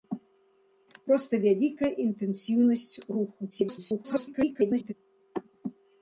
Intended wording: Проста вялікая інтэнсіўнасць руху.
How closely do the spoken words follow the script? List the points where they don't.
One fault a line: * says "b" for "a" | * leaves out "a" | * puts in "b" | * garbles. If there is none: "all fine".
* garbles